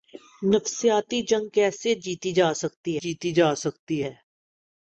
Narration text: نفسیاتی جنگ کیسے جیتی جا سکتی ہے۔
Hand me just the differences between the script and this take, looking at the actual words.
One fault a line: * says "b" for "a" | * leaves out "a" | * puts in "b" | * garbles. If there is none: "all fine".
* puts in "جیتی جا سکتی"